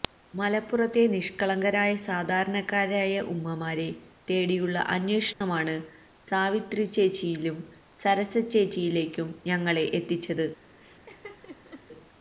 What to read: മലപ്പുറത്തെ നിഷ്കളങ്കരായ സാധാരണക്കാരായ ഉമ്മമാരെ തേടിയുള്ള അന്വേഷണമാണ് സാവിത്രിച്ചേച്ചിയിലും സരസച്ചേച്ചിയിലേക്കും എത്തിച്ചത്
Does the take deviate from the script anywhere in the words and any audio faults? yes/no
yes